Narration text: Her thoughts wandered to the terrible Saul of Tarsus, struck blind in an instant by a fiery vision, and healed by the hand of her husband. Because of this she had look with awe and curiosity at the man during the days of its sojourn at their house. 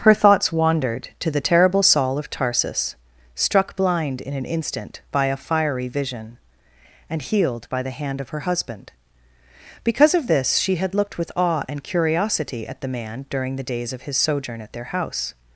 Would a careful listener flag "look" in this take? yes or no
yes